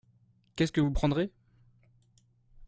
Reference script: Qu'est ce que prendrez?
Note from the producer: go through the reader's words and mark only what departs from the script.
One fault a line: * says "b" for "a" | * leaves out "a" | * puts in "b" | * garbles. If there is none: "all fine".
* puts in "vous"